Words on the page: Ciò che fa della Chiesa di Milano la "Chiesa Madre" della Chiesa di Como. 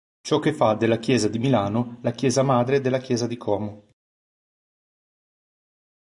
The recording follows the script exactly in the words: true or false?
true